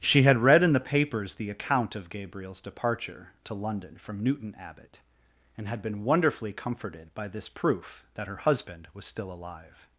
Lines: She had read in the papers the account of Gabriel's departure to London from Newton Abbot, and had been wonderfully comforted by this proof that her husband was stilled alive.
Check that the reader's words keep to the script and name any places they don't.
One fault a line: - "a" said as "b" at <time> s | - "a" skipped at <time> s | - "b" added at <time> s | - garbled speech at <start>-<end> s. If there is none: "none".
- "stilled" said as "still" at 9.0 s